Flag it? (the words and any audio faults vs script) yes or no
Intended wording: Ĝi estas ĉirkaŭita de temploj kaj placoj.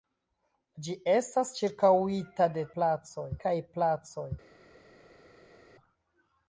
yes